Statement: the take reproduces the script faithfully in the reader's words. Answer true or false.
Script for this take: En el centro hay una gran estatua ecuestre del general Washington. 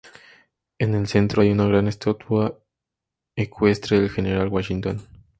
true